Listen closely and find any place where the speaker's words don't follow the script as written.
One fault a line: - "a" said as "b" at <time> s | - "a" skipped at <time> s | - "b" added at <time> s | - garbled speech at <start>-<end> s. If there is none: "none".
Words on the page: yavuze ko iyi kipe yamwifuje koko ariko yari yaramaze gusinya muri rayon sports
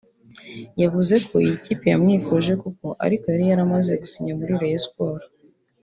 none